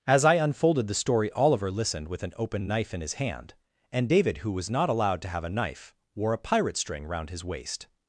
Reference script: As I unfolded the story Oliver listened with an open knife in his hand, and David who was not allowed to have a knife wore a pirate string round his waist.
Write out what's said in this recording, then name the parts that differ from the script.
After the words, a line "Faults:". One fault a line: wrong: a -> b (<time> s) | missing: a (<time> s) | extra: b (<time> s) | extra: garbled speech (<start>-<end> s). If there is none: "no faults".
As I unfolded the story Oliver listened with an open knife in his hand, and David who was not allowed to have a knife wore a pirate string round his waist.
Faults:
no faults